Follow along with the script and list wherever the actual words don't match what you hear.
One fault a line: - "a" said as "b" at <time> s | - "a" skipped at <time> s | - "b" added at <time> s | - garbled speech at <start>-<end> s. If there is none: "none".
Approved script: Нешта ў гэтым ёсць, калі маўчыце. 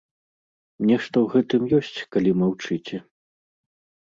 none